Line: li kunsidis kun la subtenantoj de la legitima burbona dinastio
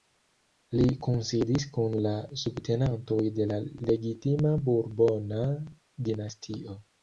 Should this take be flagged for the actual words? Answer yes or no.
no